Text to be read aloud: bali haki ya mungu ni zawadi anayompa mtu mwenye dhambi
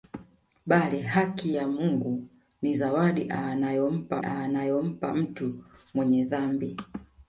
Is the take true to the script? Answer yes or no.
no